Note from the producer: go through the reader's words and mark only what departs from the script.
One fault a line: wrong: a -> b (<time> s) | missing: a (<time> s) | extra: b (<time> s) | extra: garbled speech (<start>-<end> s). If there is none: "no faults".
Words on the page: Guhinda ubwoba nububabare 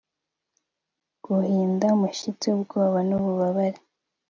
extra: umushyitsi (2.0 s)